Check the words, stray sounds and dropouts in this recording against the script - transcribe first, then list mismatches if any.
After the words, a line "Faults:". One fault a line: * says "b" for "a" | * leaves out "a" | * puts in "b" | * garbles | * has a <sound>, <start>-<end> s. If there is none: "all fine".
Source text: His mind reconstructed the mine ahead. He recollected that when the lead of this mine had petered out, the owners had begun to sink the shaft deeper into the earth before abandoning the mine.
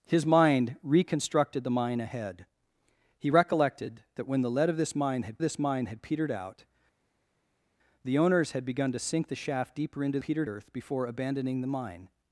His mind reconstructed the mine ahead. He recollected that when the lead of this mine had this mine had petered out, the owners had begun to sink the shaft deeper into petered earth before abandoning the mine.
Faults:
* puts in "this mine had"
* says "petered" for "the"